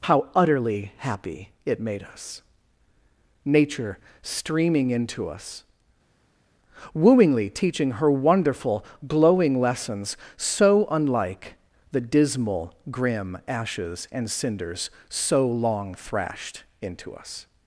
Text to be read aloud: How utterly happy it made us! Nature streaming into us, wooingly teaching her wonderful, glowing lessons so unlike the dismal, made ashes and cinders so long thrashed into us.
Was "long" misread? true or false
false